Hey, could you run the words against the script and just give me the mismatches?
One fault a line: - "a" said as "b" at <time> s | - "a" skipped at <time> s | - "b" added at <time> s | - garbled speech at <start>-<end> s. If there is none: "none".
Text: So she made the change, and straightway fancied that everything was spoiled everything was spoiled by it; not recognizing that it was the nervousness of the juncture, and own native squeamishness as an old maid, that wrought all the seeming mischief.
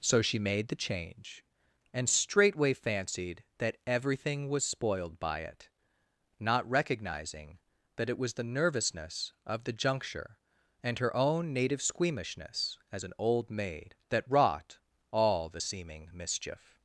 - "everything was spoiled" skipped at 5.2 s
- "her" added at 11.0 s